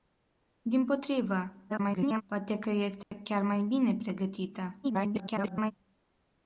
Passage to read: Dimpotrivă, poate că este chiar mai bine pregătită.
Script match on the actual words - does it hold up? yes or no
no